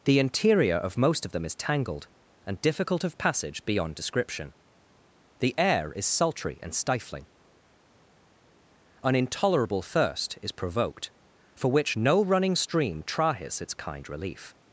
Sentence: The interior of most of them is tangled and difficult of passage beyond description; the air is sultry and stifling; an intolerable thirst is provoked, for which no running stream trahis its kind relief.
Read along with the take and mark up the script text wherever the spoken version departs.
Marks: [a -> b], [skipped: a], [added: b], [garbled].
The interior of most of them is tangled and difficult of passage beyond description; the air is sultry and stifling; an intolerable thirst is provoked, for which no running stream trahis its kind relief.